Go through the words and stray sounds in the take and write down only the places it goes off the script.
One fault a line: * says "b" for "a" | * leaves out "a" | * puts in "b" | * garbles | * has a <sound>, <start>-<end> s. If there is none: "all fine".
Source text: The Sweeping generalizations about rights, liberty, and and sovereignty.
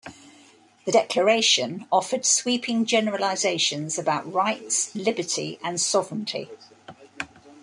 * puts in "Declaration offered"
* leaves out "and"